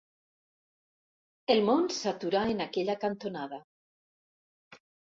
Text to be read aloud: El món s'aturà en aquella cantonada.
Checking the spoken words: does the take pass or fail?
pass